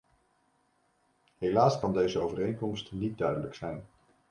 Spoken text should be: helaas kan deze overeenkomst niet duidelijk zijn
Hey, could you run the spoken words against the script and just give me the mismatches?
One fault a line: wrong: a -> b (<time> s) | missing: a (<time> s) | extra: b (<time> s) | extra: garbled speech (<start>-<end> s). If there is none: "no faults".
no faults